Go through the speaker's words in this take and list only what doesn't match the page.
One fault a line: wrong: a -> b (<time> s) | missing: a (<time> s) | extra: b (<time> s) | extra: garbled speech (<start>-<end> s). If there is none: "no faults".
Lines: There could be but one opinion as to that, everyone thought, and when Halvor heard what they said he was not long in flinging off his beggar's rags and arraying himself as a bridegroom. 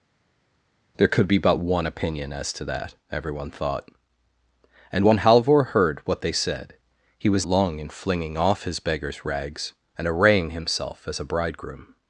missing: not (7.5 s)